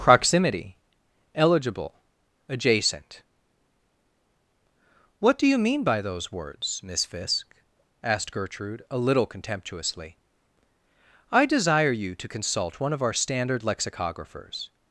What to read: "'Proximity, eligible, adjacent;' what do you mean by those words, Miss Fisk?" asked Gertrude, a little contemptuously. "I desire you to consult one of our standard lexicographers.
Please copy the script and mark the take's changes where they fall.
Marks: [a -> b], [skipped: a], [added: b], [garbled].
"'Proximity, eligible, adjacent;' what do you mean by those words, Miss Fisk?" asked Gertrude, a little contemptuously. "I desire you to consult one of our standard lexicographers.